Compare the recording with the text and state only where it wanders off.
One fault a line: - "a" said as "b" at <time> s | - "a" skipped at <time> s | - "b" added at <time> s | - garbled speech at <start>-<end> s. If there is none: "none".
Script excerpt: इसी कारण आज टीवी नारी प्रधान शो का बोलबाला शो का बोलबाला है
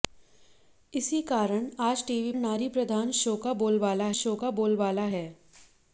none